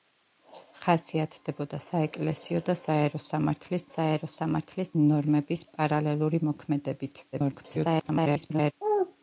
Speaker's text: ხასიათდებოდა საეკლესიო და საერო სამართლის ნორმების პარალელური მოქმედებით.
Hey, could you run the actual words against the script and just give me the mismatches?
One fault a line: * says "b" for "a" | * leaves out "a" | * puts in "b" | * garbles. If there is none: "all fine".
* puts in "საერო სამართლის"
* garbles